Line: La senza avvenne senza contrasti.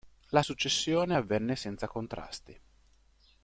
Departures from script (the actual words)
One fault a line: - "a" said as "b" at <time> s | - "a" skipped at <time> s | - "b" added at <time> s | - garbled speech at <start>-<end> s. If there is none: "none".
- "senza" said as "successione" at 0.4 s